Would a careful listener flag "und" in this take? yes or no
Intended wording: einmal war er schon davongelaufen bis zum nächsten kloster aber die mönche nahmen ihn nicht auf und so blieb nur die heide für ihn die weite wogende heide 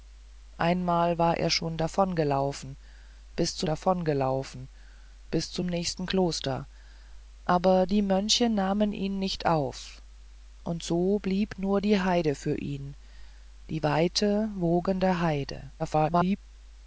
no